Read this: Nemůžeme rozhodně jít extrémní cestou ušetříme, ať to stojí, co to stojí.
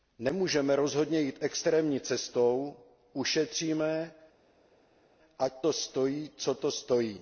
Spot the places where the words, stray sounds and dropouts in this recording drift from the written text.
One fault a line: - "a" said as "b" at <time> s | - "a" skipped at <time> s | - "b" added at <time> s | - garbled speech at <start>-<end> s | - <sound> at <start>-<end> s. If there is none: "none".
none